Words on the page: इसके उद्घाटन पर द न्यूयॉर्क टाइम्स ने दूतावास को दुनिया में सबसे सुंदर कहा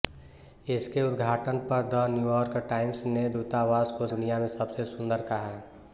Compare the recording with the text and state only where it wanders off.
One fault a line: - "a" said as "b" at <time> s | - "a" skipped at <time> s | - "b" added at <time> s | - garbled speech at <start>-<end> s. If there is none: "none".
none